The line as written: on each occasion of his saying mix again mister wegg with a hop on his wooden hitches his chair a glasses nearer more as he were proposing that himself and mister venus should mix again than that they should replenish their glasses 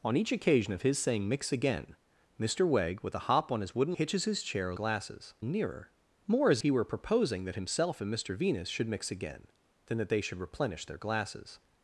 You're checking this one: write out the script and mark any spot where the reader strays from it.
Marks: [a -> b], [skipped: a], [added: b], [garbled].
on each occasion of his saying mix again mister wegg with a hop on his wooden hitches his chair a glasses nearer more as he were proposing that himself and mister venus should mix again than that they should replenish their glasses